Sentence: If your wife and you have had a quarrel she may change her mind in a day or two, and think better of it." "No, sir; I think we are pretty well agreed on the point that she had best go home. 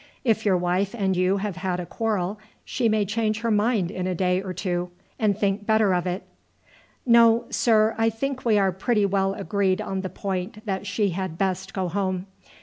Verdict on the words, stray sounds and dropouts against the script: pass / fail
pass